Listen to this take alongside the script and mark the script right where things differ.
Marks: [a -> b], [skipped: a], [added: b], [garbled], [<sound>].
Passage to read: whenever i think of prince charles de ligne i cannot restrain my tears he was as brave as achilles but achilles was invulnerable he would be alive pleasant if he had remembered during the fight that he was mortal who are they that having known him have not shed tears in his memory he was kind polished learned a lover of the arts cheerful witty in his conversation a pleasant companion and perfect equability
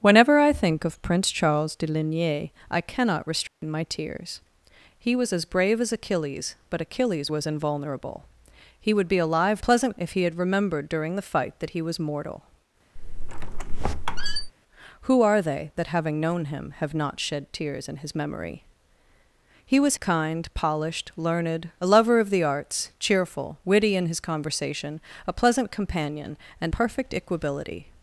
whenever i think of prince charles de ligne i cannot restrain [dropout] my tears he was as brave as achilles but achilles was invulnerable he would be alive pleasant if he had remembered during the fight that he was mortal [squeak] who are they that having known him have not shed tears in his memory he was kind polished learned a lover of the arts cheerful witty in his conversation a pleasant companion and perfect equability